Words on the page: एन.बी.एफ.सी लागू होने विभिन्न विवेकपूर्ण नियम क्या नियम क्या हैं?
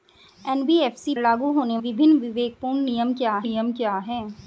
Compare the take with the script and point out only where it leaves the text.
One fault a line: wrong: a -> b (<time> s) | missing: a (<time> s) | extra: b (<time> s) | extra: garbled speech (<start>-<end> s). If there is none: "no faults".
no faults